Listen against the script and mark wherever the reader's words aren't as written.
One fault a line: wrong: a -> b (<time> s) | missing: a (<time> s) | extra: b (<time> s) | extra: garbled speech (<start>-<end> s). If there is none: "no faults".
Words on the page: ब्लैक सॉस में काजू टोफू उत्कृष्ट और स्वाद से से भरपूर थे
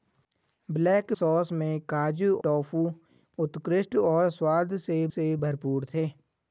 no faults